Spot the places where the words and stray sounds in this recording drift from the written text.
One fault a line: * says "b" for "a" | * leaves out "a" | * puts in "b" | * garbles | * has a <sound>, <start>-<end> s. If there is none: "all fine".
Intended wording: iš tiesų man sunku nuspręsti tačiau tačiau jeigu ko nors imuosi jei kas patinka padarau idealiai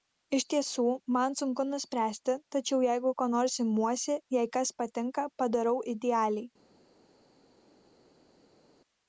* leaves out "tačiau"